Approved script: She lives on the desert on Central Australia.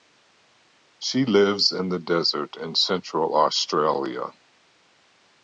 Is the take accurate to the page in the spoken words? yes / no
no